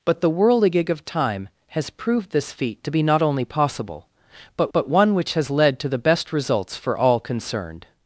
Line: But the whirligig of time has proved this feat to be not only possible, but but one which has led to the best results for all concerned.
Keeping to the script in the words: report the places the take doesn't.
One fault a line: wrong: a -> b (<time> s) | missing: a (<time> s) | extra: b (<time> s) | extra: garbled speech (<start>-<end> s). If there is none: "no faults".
no faults